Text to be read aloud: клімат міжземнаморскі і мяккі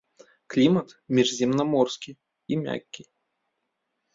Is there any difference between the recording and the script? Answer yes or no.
no